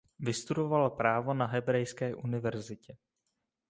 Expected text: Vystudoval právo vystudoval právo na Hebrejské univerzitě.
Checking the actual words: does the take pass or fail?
fail